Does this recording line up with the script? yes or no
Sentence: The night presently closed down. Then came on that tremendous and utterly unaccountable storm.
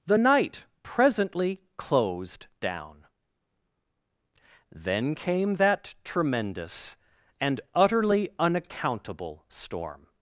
no